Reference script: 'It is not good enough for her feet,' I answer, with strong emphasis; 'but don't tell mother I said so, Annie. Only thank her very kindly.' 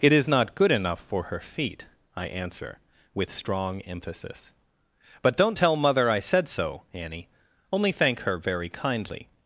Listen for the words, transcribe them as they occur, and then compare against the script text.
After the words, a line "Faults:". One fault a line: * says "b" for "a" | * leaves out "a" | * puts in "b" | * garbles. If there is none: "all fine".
'It is not good enough for her feet,' I answer, with strong emphasis; 'but don't tell mother I said so, Annie. Only thank her very kindly.'
Faults:
all fine